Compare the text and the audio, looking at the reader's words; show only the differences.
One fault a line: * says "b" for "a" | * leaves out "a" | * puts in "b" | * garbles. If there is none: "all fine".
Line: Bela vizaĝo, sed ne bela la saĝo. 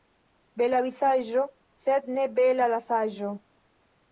all fine